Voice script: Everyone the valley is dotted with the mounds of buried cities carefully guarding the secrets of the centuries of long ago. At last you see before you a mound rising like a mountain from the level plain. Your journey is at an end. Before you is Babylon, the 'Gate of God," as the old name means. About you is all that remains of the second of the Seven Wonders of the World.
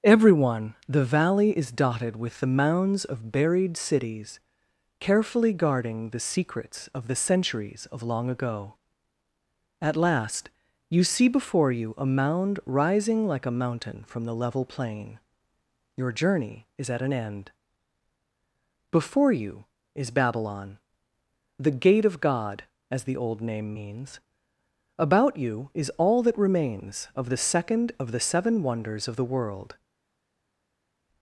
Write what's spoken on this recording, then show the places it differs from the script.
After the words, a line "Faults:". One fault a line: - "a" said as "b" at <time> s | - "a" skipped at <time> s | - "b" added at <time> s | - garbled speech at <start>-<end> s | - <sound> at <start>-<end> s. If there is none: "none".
Everyone the valley is dotted with the mounds of buried cities carefully guarding the secrets of the centuries of long ago. At last you see before you a mound rising like a mountain from the level plain. Your journey is at an end. Before you is Babylon, the 'Gate of God," as the old name means. About you is all that remains of the second of the Seven Wonders of the World.
Faults:
none